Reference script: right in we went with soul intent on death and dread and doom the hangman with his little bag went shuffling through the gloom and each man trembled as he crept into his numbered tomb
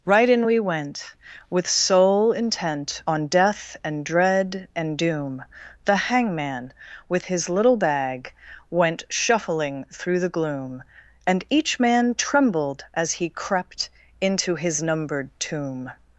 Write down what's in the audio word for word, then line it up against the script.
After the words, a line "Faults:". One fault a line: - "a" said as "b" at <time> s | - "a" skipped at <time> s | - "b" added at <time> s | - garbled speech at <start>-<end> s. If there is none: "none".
right in we went with soul intent on death and dread and doom the hangman with his little bag went shuffling through the gloom and each man trembled as he crept into his numbered tomb
Faults:
none